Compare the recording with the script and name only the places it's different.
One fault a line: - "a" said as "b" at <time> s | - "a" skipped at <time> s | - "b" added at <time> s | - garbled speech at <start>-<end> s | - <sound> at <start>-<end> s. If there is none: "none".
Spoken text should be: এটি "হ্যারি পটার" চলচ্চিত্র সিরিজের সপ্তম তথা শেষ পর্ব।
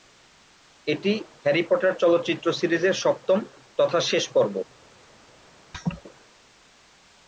- laugh at 5.7-6.0 s